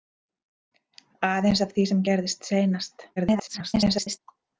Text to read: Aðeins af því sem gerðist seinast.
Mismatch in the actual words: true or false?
true